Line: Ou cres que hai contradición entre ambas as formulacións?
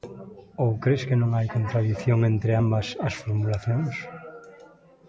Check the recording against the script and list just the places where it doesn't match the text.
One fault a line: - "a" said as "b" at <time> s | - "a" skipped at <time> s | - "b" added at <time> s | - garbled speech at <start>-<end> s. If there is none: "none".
- "non" added at 1.2 s